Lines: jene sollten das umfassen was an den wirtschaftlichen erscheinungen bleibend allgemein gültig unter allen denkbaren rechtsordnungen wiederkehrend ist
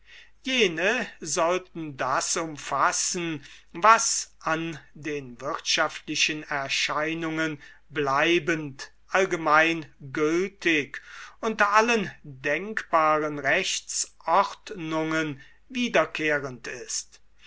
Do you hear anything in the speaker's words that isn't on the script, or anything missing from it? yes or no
no